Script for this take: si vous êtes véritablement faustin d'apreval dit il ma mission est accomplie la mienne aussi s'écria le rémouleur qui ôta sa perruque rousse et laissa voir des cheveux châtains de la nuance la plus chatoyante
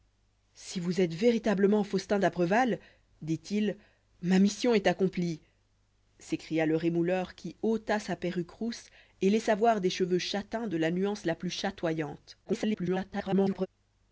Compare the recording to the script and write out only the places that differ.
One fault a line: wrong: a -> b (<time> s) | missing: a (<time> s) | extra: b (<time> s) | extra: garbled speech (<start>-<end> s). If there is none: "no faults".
missing: la mienne aussi (5.4 s)
extra: garbled speech (12.4-13.7 s)